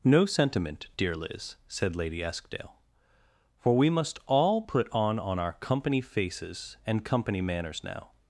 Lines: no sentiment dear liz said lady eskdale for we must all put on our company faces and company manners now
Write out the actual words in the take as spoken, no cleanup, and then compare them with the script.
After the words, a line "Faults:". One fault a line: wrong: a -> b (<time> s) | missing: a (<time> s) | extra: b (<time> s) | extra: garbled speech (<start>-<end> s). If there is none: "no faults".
no sentiment dear liz said lady eskdale for we must all put on on our company faces and company manners now
Faults:
extra: on (5.2 s)